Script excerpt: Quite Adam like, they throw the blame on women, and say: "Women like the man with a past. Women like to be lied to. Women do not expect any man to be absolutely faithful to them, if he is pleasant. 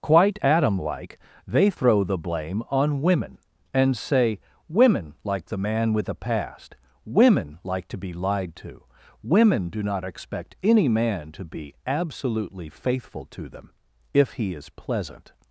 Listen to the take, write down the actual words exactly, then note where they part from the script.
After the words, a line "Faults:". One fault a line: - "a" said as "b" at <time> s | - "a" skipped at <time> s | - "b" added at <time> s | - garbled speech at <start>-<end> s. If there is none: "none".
Quite Adam like, they throw the blame on women, and say: "Women like the man with a past. Women like to be lied to. Women do not expect any man to be absolutely faithful to them, if he is pleasant.
Faults:
none